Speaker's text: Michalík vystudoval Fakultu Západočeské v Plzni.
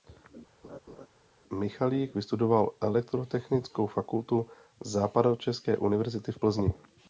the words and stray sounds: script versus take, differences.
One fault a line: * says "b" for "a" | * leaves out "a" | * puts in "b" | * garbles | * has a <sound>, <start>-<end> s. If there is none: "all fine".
* has a laugh, 0.6-1.1 s
* puts in "Elektrotechnickou"
* puts in "univerzity"